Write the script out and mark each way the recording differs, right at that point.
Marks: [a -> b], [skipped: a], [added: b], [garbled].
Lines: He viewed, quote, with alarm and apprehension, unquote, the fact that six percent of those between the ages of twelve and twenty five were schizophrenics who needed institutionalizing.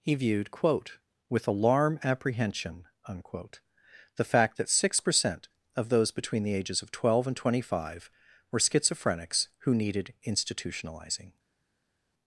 He viewed, quote, with alarm [skipped: and] apprehension, unquote, the fact that six percent of those between the ages of twelve and twenty five were schizophrenics who needed institutionalizing.